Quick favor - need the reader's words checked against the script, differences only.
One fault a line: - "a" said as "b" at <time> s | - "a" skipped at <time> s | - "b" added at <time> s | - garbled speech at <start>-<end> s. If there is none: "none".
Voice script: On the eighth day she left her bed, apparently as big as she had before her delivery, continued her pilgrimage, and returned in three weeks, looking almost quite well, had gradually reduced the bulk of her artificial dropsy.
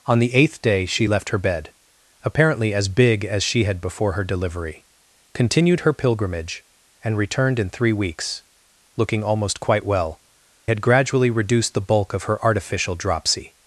none